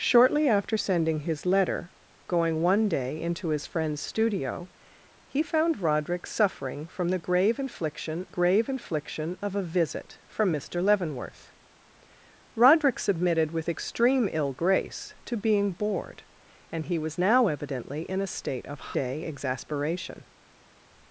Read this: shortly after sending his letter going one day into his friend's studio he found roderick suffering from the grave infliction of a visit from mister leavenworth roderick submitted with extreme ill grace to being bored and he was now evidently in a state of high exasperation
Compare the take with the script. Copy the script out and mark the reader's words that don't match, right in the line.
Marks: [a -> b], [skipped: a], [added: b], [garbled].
shortly after sending his letter going one day into his friend's studio he found roderick suffering from the grave infliction [added: grave infliction] of a visit from mister leavenworth roderick submitted with extreme ill grace to being bored and he was now evidently in a state of [high -> day] exasperation